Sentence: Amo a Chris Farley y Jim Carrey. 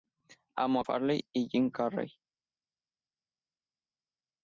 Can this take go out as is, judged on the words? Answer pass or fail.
fail